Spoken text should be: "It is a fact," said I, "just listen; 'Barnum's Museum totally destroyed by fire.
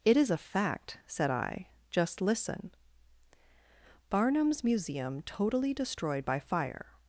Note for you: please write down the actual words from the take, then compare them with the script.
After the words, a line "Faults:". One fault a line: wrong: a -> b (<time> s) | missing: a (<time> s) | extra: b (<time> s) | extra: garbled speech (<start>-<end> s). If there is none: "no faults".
"It is a fact," said I, "just listen; 'Barnum's Museum totally destroyed by fire.
Faults:
no faults